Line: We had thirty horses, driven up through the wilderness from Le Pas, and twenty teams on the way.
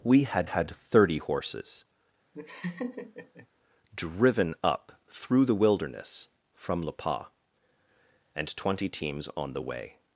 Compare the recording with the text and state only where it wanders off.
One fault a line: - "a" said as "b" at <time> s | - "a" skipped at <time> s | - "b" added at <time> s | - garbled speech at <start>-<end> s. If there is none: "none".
- "had" added at 0.4 s